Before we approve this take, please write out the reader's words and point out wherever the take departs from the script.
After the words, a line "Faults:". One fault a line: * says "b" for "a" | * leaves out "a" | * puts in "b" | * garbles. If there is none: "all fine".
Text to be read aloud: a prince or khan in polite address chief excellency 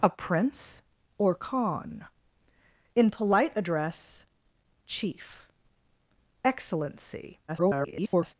a prince or khan in polite address chief excellency [garbled]
Faults:
* garbles